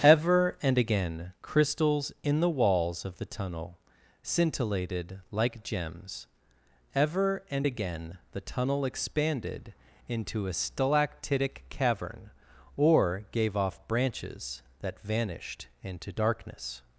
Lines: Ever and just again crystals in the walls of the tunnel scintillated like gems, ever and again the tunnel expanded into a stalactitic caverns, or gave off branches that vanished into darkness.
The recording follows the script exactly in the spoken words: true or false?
false